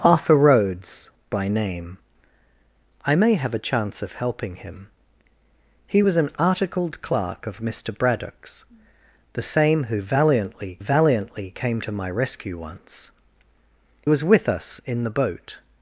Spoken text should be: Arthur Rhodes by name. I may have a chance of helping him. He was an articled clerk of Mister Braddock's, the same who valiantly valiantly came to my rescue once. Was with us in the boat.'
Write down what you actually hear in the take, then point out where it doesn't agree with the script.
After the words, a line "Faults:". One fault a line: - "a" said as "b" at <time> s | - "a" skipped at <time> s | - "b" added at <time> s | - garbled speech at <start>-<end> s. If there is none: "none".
Arthur Rhodes by name. I may have a chance of helping him. He was an articled clerk of Mister Braddock's, the same who valiantly valiantly came to my rescue once. Was with us in the boat.'
Faults:
none